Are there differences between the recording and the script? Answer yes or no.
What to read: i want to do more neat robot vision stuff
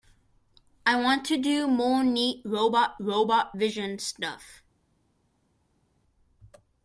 yes